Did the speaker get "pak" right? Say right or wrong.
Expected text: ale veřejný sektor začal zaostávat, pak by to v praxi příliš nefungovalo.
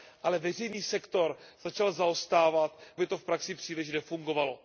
wrong